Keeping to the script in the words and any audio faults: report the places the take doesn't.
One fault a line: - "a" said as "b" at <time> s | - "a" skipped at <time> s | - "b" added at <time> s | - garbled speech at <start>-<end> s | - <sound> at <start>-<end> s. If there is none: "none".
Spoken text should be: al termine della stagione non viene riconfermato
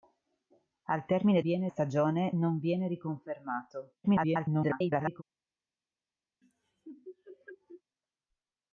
- "della" said as "viene" at 1.4 s
- garbled speech at 4.0-5.2 s
- laugh at 6.4-7.8 s